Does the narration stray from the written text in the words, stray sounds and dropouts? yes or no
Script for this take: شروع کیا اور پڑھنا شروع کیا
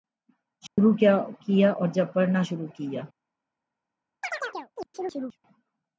yes